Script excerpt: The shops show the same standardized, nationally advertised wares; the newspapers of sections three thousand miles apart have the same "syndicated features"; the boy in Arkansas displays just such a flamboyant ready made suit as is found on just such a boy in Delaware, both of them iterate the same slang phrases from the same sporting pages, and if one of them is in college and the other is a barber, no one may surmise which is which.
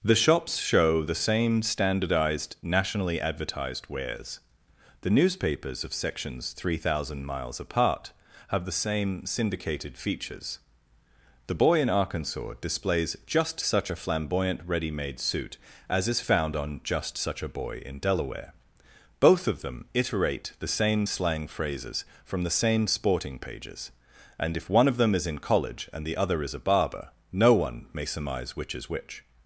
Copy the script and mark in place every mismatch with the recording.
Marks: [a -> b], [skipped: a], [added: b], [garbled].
The shops show the same standardized, nationally advertised wares; the newspapers of sections three thousand miles apart have the same "syndicated features"; the boy in Arkansas displays just such a flamboyant ready made suit as is found on just such a boy in Delaware, both of them iterate the same slang phrases from the same sporting pages, and if one of them is in college and the other is a barber, no one may surmise which is which.